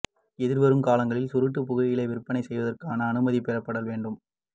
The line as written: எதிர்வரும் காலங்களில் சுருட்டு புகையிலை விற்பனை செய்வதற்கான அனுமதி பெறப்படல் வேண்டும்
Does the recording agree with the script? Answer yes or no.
yes